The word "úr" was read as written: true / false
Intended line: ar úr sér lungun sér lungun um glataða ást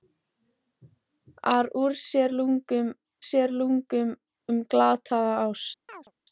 true